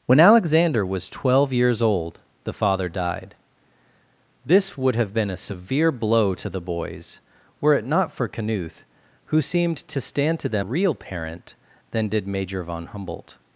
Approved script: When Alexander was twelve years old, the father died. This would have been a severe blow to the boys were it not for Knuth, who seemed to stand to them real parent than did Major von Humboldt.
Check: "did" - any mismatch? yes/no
no